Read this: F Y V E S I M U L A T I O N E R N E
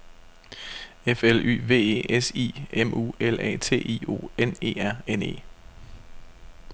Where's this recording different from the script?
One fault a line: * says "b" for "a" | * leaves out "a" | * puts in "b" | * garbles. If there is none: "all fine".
* puts in "L"